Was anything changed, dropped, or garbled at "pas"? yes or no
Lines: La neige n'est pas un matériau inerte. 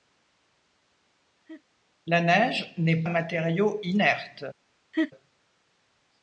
yes